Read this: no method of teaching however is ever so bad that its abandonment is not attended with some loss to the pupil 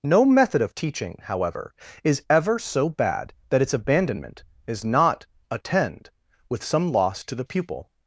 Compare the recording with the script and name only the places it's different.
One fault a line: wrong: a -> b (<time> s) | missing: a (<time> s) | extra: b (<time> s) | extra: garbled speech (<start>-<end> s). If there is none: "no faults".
wrong: attended -> attend (5.5 s)